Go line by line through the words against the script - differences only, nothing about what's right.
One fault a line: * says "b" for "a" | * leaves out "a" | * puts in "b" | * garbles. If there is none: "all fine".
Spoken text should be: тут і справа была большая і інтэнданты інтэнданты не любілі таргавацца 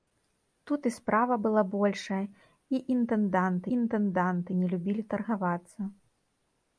all fine